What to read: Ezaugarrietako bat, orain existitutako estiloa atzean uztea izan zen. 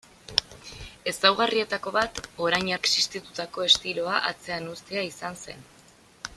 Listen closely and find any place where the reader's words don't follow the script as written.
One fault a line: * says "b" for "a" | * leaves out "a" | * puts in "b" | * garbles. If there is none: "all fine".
all fine